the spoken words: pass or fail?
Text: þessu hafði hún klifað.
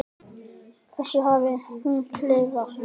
pass